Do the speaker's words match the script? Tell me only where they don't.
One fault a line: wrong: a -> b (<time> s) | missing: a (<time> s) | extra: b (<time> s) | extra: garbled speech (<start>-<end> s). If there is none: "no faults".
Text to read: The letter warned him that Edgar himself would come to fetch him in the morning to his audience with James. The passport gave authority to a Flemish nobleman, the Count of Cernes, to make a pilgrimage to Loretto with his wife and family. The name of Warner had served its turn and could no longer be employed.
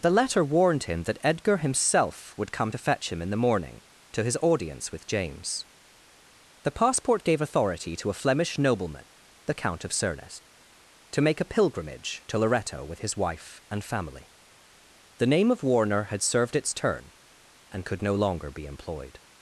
no faults